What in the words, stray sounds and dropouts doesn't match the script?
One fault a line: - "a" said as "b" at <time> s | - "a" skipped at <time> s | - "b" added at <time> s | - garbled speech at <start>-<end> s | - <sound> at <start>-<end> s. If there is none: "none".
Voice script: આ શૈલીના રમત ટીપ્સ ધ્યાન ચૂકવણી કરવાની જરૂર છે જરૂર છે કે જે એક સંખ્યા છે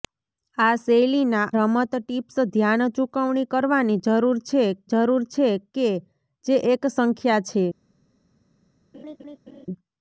- laugh at 8.9-9.7 s